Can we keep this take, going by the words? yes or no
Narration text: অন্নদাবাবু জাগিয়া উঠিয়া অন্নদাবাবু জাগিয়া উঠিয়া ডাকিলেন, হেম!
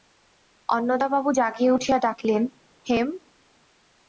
no